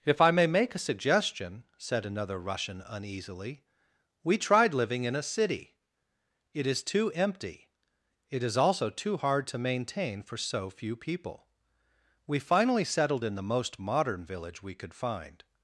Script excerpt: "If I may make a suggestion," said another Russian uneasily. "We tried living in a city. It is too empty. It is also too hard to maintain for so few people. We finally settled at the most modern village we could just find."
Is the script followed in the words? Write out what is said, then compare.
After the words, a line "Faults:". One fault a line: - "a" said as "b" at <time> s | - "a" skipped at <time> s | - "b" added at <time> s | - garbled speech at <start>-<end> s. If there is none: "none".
"If I may make a suggestion," said another Russian uneasily. "We tried living in a city. It is too empty. It is also too hard to maintain for so few people. We finally settled in the most modern village we could find."
Faults:
- "at" said as "in" at 13.2 s
- "just" skipped at 14.9 s